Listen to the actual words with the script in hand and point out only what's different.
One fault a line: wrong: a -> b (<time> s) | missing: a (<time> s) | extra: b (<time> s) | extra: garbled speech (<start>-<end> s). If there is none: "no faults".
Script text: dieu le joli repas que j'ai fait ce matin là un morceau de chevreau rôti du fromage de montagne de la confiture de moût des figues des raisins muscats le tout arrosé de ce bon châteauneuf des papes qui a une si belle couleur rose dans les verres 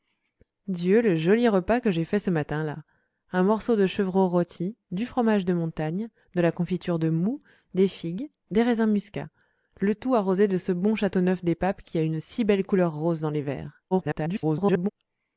extra: garbled speech (13.9-14.9 s)